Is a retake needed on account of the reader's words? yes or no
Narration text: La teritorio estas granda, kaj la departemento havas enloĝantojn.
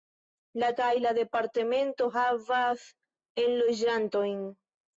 yes